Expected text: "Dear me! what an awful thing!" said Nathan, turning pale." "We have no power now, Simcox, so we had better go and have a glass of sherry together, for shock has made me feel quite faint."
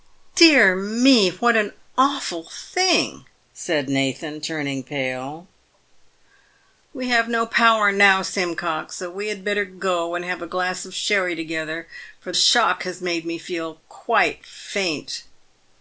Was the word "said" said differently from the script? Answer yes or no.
no